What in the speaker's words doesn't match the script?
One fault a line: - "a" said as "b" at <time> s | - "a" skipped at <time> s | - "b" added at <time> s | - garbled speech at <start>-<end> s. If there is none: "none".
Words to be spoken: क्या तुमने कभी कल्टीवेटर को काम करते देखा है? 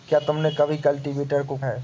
- "काम करते देखा" skipped at 1.6 s